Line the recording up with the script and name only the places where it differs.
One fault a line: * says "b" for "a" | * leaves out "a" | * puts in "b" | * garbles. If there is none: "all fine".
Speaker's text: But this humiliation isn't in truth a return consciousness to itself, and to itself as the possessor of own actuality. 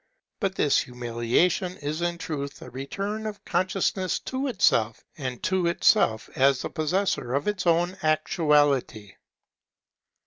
* says "is" for "isn't"
* puts in "of"
* puts in "its"